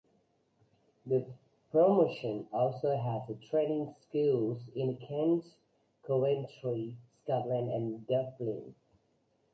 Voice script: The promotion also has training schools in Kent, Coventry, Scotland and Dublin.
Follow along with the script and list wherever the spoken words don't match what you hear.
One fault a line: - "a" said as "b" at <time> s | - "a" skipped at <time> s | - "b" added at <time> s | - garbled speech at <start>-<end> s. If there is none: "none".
none